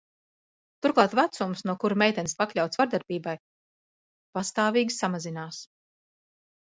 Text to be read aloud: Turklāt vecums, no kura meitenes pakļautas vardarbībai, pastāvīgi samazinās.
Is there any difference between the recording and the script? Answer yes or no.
no